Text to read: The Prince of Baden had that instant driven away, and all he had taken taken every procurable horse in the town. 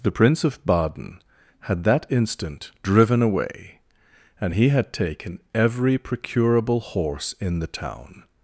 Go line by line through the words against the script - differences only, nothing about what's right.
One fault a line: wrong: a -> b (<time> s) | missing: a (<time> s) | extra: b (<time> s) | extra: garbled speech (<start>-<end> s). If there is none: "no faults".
missing: all (4.5 s)
missing: taken (5.4 s)